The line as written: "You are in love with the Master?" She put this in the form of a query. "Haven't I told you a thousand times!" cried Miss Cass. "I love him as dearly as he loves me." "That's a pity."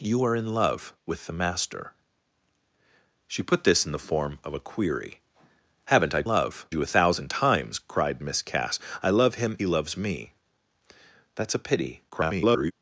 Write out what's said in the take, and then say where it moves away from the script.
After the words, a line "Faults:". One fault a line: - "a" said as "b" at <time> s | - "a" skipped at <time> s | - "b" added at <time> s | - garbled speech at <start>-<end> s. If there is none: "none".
"You are in love with the Master?" She put this in the form of a query. "Haven't I love you a thousand times!" cried Miss Cass. "I love him he loves me." "That's a pity." [garbled]
Faults:
- "told" said as "love" at 6.3 s
- "as dearly as" skipped at 9.6 s
- garbled speech at 12.1-12.7 s